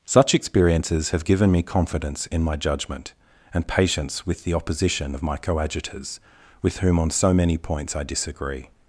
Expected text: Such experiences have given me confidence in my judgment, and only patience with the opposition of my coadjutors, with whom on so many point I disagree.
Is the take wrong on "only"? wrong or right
wrong